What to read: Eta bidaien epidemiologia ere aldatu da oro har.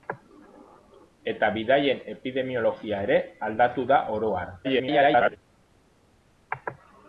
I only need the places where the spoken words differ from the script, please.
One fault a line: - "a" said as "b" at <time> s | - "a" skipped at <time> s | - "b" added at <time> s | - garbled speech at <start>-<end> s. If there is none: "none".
- garbled speech at 4.6-5.4 s